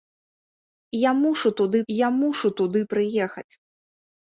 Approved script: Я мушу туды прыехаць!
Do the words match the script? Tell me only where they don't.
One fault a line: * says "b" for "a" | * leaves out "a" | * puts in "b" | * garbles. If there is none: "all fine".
* puts in "я мушу туды"